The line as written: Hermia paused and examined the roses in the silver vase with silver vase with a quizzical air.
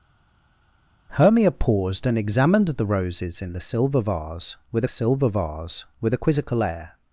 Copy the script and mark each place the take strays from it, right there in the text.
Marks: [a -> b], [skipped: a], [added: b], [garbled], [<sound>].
Hermia paused and examined the roses in the silver vase with silver vase with a quizzical air.